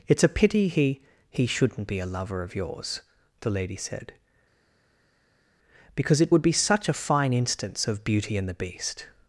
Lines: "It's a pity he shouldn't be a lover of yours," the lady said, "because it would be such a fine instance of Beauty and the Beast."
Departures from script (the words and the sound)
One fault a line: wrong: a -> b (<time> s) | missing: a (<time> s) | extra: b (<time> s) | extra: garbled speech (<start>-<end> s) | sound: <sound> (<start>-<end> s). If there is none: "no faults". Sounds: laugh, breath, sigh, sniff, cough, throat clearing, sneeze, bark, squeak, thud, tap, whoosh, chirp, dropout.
extra: he (1.3 s)